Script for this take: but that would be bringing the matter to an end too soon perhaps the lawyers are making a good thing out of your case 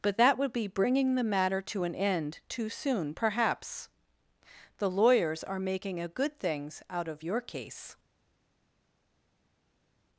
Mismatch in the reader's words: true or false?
true